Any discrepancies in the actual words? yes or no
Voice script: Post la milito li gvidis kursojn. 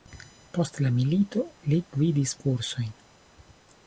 no